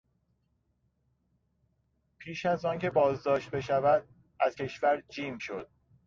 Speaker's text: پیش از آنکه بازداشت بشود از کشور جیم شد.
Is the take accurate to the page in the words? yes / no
yes